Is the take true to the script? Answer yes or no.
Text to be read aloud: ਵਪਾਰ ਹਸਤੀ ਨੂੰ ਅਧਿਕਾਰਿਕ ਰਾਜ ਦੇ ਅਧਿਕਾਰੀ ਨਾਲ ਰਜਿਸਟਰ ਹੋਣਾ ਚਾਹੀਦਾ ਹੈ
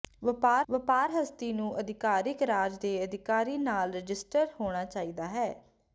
no